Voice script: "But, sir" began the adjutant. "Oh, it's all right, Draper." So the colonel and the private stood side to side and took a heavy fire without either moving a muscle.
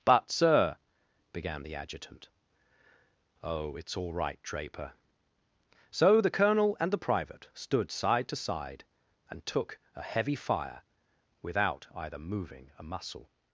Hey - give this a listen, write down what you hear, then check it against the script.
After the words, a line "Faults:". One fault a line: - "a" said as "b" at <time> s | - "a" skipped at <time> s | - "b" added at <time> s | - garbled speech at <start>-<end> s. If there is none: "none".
"But, sir" began the adjutant. "Oh, it's all right, Draper." So the colonel and the private stood side to side and took a heavy fire without either moving a muscle.
Faults:
none